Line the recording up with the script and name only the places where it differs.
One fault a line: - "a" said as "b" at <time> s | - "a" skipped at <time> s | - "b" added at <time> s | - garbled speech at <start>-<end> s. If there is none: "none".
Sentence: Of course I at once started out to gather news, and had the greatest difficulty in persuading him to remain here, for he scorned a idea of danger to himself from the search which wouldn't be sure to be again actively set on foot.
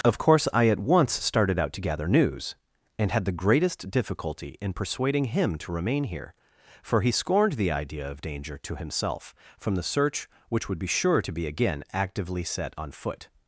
- "a" said as "the" at 7.5 s
- "wouldn't" said as "would" at 10.7 s